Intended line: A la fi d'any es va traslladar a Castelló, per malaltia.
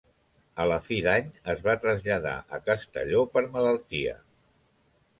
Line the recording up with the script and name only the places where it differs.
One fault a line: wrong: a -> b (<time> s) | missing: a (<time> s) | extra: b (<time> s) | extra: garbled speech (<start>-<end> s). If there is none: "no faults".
no faults